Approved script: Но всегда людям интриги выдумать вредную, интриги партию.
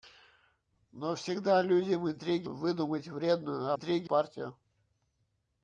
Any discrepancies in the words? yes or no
no